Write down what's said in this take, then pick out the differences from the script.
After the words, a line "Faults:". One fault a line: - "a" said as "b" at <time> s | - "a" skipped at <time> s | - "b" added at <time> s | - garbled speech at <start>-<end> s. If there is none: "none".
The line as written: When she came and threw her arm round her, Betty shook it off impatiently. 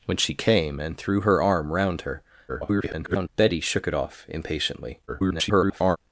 When she came and threw her arm round her, [garbled] Betty shook it off impatiently. [garbled]
Faults:
- garbled speech at 2.5-3.3 s
- garbled speech at 5.1-6.0 s